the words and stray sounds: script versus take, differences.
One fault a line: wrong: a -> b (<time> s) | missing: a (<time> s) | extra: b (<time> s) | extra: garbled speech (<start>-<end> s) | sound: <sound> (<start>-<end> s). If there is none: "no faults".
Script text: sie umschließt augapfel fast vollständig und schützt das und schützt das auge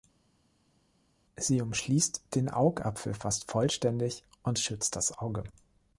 extra: den (2.3 s)
missing: und schützt das (5.2 s)